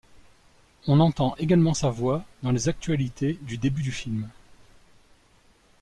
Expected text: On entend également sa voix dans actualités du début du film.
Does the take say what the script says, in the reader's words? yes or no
no